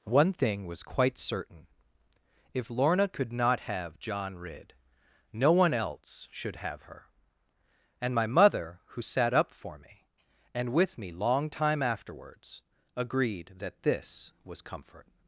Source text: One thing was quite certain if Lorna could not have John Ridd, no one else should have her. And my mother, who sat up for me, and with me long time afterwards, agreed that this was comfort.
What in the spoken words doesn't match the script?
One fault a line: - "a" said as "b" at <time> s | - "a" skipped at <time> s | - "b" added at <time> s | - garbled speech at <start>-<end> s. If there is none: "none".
none